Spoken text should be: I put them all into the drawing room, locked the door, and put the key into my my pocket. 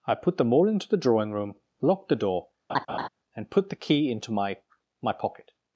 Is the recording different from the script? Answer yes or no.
no